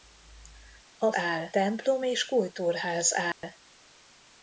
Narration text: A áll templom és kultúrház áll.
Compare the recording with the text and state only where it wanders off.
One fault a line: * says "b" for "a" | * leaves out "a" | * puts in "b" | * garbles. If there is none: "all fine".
all fine